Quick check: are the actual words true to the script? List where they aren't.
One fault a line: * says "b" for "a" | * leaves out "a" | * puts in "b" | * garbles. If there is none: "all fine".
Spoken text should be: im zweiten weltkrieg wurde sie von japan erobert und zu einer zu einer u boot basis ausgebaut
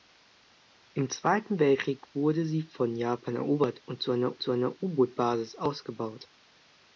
all fine